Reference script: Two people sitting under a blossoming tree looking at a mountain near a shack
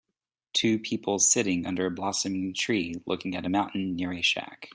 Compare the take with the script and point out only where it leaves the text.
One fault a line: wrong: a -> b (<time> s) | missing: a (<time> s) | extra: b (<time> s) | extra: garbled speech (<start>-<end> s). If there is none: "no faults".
no faults